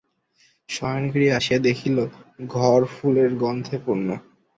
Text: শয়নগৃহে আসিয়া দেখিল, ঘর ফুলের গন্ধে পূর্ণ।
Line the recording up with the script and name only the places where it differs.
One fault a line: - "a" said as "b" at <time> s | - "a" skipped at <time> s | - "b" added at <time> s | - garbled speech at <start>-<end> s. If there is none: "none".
none